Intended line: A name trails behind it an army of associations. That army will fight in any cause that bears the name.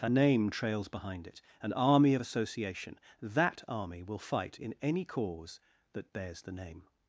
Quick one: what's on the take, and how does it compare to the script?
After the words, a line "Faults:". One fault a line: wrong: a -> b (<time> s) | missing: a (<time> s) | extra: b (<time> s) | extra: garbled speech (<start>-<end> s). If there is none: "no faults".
A name trails behind it an army of association. That army will fight in any cause that bears the name.
Faults:
wrong: associations -> association (2.2 s)